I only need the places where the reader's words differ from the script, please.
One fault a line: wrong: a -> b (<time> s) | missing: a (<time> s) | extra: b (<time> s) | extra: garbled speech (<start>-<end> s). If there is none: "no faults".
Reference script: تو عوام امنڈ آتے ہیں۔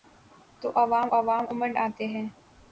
extra: عوام (1.1 s)